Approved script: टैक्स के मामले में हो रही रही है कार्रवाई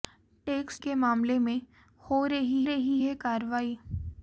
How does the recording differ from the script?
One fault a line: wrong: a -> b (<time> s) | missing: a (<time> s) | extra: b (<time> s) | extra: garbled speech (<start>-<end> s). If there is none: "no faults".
no faults